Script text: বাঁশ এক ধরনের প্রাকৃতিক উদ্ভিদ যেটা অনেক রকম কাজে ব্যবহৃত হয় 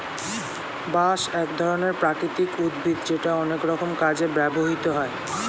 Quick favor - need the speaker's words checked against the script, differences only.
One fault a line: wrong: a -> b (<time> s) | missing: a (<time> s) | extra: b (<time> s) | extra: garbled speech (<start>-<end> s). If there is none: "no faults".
no faults